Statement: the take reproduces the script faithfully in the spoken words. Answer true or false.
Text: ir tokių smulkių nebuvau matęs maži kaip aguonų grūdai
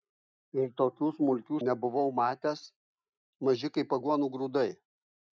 true